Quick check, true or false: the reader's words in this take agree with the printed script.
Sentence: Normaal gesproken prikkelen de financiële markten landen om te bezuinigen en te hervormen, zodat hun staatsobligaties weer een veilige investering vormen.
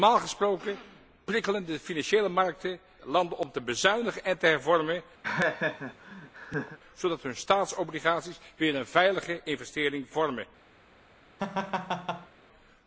true